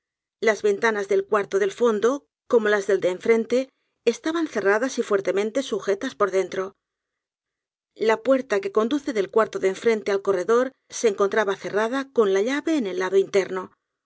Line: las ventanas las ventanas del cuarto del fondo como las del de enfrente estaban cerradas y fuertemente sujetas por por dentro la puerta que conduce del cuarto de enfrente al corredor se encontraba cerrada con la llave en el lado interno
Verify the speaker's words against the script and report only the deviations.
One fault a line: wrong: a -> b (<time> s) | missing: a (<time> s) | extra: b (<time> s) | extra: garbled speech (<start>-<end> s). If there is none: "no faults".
missing: las ventanas (1.1 s)
missing: por (6.3 s)